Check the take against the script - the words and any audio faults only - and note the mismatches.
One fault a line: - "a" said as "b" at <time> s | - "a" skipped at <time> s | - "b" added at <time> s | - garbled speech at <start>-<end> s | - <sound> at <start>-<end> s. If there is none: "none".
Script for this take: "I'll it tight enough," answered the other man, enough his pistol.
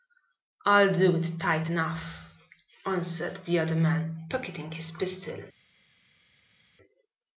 - "do" added at 0.9 s
- "enough" said as "pocketing" at 4.3 s